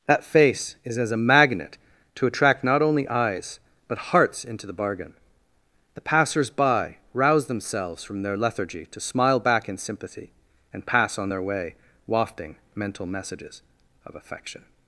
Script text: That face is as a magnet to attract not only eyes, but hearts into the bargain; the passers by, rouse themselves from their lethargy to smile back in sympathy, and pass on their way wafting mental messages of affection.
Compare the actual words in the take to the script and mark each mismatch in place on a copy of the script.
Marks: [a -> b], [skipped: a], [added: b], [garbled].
That face is as a magnet to attract not only eyes, but hearts into the bargain; the passers by, rouse themselves from their lethargy to smile back in sympathy, and pass on their way wafting mental messages of affection.